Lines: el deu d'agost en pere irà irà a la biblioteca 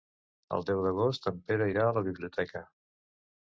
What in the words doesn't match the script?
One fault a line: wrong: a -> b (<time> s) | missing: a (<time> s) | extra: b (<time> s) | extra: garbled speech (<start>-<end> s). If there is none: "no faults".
missing: irà (1.9 s)